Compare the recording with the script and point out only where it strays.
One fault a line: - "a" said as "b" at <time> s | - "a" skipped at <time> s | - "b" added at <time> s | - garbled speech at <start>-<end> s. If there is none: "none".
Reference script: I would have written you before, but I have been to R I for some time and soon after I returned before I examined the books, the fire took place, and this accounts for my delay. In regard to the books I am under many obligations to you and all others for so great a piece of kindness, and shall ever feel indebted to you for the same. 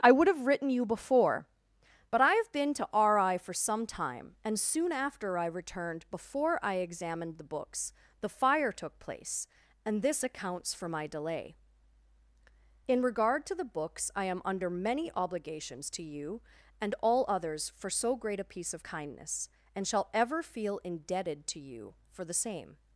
none